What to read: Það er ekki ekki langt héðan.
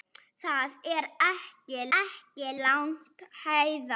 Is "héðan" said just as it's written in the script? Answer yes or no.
yes